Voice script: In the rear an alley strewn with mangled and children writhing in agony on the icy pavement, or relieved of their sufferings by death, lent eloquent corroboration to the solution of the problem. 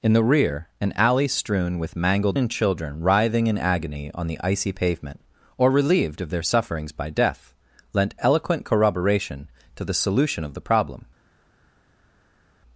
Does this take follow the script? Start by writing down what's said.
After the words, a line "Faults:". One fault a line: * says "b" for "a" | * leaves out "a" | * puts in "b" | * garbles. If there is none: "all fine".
In the rear an alley strewn with mangled and children writhing in agony on the icy pavement, or relieved of their sufferings by death, lent eloquent corroboration to the solution of the problem.
Faults:
all fine